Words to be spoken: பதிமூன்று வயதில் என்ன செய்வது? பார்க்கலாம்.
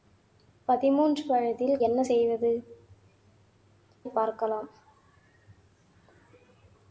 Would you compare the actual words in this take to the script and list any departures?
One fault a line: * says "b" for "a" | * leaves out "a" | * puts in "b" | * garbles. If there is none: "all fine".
all fine